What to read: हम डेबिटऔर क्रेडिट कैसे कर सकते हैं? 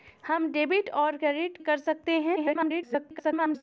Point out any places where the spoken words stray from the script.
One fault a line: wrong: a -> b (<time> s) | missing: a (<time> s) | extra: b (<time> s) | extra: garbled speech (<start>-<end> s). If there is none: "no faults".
missing: कैसे (1.6 s)
extra: garbled speech (2.4-3.6 s)